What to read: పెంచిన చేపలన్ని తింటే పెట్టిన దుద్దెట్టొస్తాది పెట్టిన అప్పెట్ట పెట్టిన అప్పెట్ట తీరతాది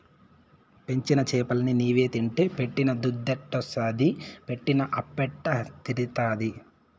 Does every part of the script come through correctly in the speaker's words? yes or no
no